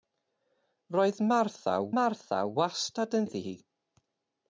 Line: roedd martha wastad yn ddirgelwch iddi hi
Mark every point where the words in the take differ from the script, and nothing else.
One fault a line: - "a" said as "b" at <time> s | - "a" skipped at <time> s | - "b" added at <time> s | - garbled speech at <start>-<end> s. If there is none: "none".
- "martha" added at 2.0 s
- "ddirgelwch" skipped at 3.3 s